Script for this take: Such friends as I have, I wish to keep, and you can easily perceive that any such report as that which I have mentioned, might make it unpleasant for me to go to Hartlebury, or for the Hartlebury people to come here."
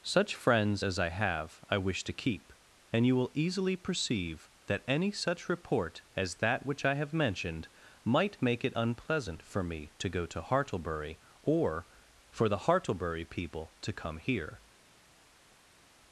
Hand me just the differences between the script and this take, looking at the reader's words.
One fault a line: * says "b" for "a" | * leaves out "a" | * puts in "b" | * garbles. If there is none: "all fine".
* says "will" for "can"